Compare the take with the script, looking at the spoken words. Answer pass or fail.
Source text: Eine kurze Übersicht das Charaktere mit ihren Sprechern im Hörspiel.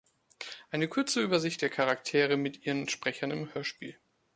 fail